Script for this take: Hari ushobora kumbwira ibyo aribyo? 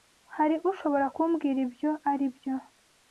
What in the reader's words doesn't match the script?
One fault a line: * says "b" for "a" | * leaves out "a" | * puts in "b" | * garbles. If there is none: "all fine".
all fine